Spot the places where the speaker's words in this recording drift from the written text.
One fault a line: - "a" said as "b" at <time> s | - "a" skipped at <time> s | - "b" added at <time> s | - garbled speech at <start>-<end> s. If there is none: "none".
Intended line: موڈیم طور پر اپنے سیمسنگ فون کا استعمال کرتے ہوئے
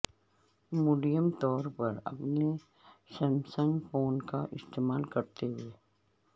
none